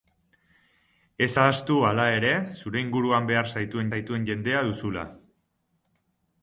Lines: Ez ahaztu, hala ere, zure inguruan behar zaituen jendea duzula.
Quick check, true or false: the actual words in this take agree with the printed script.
false